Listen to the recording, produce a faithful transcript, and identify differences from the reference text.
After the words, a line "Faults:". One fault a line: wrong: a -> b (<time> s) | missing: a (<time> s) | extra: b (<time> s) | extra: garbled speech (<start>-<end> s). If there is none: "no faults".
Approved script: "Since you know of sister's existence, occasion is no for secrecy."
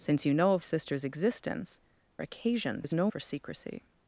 "Since you know of sister's existence, occasion is no for secrecy."
Faults:
no faults